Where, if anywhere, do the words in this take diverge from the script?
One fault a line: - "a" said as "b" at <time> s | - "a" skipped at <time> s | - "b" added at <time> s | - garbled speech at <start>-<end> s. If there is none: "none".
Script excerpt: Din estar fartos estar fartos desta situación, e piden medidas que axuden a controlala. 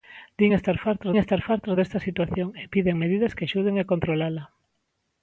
none